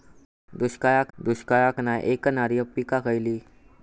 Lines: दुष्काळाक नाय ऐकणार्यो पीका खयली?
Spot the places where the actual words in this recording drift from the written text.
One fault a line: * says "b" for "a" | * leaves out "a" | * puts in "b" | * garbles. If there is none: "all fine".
* puts in "दुष्काळाक"